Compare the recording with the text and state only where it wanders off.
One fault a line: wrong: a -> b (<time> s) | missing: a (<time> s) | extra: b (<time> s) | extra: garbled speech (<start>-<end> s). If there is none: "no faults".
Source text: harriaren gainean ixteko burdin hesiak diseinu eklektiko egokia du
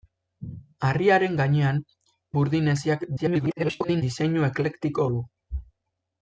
missing: ixteko (1.8 s)
extra: garbled speech (3.2-4.0 s)
missing: egokia (5.1 s)